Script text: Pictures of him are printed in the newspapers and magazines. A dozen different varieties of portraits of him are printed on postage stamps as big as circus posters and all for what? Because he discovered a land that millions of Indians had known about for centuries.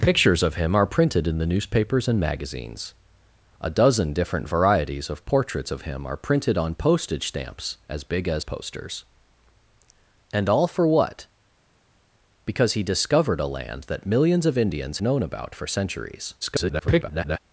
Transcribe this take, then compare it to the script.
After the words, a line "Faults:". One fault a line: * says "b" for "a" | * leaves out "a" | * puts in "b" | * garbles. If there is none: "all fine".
Pictures of him are printed in the newspapers and magazines. A dozen different varieties of portraits of him are printed on postage stamps as big as posters and all for what? Because he discovered a land that millions of Indians known about for centuries. [garbled]
Faults:
* leaves out "circus"
* leaves out "had"
* garbles